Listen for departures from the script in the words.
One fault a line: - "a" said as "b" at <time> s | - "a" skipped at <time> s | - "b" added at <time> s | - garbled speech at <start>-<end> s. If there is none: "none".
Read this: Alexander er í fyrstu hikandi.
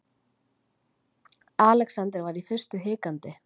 - "er" said as "var" at 2.3 s